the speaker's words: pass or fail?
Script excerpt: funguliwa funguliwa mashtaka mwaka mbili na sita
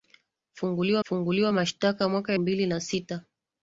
pass